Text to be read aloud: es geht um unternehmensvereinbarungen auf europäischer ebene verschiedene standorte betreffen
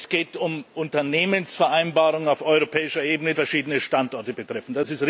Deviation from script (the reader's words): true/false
false